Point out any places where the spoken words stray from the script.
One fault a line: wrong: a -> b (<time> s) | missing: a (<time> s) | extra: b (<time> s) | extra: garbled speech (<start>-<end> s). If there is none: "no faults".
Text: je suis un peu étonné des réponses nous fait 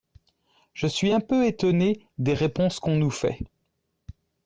extra: qu'on (2.8 s)